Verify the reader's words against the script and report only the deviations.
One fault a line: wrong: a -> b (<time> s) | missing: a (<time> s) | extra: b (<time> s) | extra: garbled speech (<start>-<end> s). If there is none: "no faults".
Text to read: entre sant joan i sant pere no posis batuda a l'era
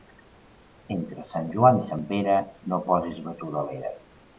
no faults